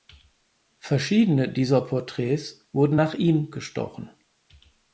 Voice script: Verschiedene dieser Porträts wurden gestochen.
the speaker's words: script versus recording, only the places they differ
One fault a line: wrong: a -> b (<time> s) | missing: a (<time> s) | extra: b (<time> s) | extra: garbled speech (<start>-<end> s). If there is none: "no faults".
extra: nach ihm (2.9 s)